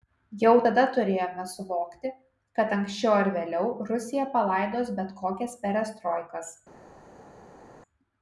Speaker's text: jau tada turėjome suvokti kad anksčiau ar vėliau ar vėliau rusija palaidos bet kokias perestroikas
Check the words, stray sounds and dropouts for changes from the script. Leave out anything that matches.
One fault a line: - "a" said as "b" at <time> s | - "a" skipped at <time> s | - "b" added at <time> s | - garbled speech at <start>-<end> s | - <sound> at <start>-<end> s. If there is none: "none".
- "ar vėliau" skipped at 3.7 s